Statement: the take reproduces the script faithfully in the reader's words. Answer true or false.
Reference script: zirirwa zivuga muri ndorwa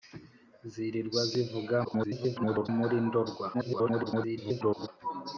false